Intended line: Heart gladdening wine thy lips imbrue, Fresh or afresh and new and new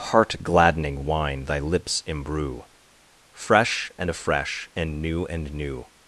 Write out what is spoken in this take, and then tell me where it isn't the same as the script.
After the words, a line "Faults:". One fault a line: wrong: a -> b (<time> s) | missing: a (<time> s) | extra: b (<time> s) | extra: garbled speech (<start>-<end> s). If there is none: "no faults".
Heart gladdening wine thy lips imbrue, Fresh and afresh and new and new
Faults:
wrong: or -> and (4.0 s)